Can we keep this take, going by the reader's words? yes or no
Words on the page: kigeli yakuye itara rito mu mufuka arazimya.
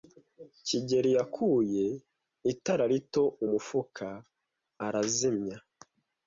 yes